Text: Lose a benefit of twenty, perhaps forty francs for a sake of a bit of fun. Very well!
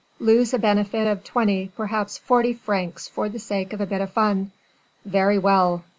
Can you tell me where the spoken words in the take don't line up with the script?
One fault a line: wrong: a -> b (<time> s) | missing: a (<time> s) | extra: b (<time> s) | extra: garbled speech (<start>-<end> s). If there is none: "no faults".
wrong: a -> the (3.3 s)